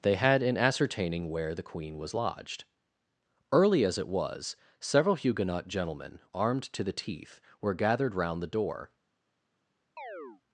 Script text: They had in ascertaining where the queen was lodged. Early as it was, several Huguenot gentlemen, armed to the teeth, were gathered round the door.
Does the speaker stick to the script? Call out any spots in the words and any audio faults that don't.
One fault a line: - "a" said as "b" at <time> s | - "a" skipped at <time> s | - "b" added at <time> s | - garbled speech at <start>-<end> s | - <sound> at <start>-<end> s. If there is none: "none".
- chirp at 10.0-10.4 s